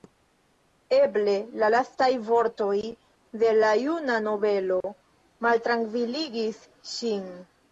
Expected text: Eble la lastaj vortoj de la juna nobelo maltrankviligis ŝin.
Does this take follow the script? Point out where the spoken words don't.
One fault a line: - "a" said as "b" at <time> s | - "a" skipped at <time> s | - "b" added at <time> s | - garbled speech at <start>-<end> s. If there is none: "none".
none